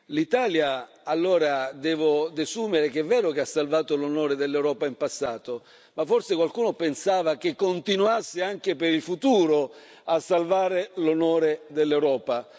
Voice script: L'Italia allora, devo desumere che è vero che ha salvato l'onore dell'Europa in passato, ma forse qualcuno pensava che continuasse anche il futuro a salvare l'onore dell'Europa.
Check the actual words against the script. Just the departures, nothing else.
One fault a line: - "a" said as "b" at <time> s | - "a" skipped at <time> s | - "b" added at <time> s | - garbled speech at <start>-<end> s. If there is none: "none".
- "per" added at 8.8 s